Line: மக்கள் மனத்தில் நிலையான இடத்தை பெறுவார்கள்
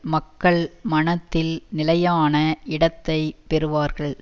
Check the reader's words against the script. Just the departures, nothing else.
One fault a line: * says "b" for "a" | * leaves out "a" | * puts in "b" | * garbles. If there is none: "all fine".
all fine